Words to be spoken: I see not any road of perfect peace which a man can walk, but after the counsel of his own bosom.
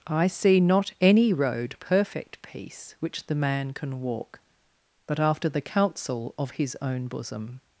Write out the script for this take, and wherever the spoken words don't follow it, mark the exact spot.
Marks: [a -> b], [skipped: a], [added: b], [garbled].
I see not any road [skipped: of] perfect peace which [a -> the] man can walk, but after the counsel of his own bosom.